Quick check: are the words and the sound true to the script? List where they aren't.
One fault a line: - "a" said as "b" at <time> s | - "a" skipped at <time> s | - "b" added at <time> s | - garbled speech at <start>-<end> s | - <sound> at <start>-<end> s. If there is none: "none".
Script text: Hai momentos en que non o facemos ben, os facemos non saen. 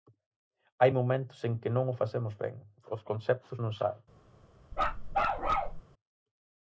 - "facemos" said as "conceptos" at 3.1 s
- bark at 4.7-5.8 s